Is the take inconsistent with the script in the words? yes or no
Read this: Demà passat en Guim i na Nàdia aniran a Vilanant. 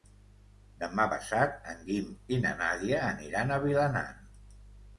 no